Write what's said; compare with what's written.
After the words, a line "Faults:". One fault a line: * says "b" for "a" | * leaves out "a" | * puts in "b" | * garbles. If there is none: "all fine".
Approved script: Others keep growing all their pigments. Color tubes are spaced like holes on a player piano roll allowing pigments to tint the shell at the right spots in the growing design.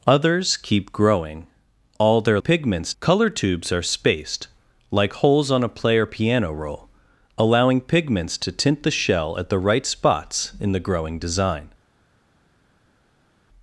Others keep growing all their pigments. Color tubes are spaced like holes on a player piano roll allowing pigments to tint the shell at the right spots in the growing design.
Faults:
all fine